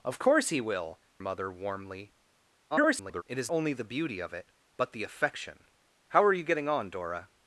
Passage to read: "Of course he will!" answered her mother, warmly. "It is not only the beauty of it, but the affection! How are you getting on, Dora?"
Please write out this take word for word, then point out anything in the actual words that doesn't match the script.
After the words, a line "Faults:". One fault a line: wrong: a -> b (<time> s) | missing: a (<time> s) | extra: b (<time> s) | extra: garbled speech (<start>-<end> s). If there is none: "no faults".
"Of course he will!" mother, warmly. [garbled] "It is only the beauty of it, but the affection! How are you getting on, Dora?"
Faults:
missing: answered her (1.0 s)
extra: garbled speech (2.7-3.2 s)
missing: not (3.5 s)